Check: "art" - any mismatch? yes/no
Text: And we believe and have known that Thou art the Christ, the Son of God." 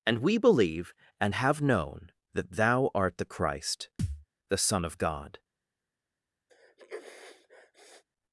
no